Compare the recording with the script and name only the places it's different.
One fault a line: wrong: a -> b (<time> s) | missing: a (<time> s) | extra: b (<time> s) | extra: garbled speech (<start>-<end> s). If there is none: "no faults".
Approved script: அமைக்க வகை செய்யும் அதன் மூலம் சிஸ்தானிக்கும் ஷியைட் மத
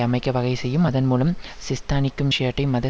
no faults